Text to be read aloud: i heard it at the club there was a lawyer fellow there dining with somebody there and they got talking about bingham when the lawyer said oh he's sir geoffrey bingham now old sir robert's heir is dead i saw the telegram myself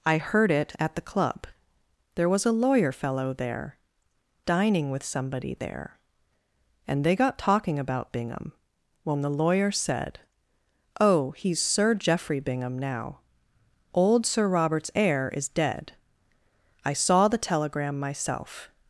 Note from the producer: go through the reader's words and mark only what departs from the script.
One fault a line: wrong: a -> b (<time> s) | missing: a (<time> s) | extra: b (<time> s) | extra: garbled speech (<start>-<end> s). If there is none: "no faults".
no faults